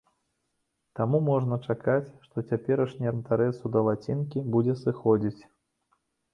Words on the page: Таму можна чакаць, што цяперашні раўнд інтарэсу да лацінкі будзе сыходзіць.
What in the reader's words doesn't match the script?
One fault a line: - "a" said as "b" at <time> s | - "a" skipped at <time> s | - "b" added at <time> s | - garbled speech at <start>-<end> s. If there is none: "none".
- "раўнд" skipped at 3.1 s